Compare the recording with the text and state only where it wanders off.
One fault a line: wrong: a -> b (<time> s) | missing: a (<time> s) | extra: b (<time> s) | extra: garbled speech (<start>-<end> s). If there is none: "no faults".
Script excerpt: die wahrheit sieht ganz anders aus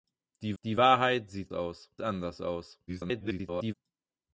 extra: die (0.6 s)
wrong: ganz -> aus (1.5 s)
extra: garbled speech (2.9-3.7 s)